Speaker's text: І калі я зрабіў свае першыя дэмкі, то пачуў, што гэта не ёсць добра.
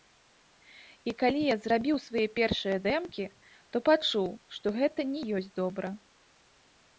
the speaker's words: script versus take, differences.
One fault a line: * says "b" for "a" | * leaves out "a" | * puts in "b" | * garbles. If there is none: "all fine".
all fine